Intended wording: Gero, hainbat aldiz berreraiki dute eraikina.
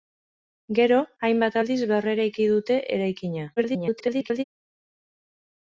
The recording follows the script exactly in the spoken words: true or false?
false